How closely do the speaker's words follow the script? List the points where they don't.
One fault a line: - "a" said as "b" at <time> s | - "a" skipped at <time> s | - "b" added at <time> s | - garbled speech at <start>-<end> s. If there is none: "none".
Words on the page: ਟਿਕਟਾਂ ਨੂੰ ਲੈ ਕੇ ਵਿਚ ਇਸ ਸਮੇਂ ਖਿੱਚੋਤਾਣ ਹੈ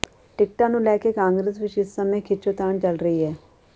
- "ਕਾਂਗਰਸ" added at 1.1 s
- "ਚੱਲ ਰਹੀ" added at 2.8 s